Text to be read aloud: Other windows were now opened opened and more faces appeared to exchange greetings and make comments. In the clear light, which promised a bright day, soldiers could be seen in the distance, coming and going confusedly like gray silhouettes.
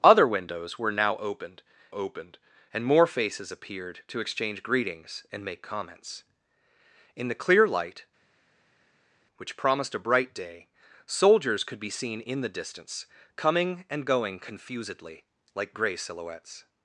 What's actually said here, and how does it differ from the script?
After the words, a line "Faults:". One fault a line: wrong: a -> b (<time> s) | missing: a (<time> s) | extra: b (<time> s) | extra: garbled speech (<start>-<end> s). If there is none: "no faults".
Other windows were now opened opened and more faces appeared to exchange greetings and make comments. In the clear light, which promised a bright day, soldiers could be seen in the distance, coming and going confusedly like gray silhouettes.
Faults:
no faults